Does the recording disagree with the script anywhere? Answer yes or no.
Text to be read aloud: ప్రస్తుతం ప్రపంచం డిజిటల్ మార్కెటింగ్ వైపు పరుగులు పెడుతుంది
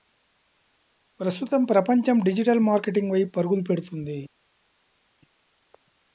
no